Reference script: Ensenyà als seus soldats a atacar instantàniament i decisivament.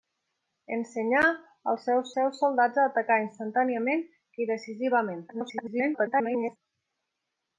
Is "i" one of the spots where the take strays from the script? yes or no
no